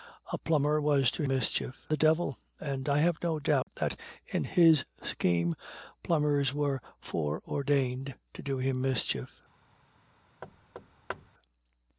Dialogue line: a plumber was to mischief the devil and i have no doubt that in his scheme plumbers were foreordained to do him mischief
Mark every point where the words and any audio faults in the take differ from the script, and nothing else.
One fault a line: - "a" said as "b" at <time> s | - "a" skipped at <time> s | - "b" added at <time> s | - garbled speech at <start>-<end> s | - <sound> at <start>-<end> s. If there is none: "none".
- dropout at 3.6-3.7 s
- thud at 10.4-11.3 s